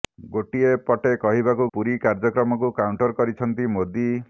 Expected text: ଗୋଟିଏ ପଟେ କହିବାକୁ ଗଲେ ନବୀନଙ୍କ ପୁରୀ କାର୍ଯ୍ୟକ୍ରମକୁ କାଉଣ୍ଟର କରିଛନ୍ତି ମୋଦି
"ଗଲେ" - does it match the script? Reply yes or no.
no